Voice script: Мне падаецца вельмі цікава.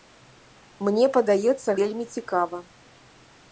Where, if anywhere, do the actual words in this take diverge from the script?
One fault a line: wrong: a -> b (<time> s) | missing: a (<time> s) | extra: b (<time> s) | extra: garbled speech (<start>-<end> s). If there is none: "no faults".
no faults